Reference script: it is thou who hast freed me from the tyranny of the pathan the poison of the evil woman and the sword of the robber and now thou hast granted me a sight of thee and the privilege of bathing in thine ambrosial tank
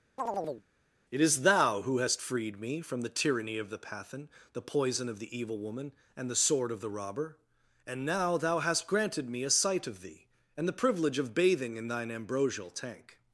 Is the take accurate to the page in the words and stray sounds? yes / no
no